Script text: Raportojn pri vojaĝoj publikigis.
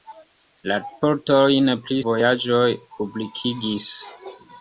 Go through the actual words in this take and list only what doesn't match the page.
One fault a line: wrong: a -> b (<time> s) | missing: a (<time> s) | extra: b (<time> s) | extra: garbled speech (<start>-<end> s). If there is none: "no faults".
no faults